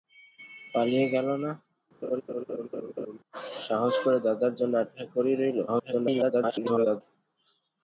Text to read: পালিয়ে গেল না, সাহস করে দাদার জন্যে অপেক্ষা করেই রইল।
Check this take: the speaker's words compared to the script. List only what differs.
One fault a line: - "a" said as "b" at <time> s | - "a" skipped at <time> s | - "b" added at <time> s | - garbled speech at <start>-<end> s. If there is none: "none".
- garbled speech at 5.7-7.0 s